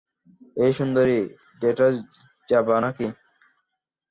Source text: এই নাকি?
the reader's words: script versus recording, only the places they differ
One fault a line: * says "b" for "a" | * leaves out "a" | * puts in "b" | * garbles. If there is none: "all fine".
* puts in "সুন্দরী ডেটে যাবা"